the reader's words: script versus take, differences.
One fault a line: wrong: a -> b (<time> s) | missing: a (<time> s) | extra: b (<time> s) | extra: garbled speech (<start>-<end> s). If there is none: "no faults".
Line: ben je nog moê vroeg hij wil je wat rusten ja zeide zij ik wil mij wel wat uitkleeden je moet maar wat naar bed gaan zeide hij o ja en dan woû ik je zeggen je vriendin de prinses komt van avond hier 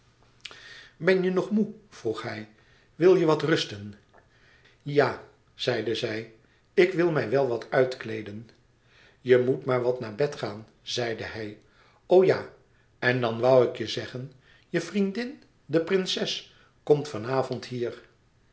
no faults